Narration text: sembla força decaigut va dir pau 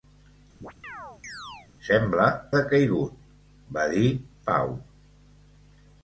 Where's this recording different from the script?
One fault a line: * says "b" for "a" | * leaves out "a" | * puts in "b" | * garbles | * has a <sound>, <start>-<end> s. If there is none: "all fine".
* has a chirp, 0.6-1.7 s
* leaves out "força"